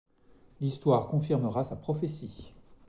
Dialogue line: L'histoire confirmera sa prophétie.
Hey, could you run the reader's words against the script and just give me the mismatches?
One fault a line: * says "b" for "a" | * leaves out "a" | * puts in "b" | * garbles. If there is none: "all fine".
all fine